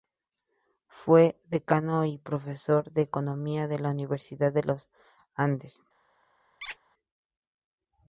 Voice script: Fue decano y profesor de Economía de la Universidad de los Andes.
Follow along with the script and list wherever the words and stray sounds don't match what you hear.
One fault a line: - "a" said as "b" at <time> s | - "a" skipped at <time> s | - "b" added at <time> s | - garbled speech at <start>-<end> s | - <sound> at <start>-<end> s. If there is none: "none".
- squeak at 6.6-6.8 s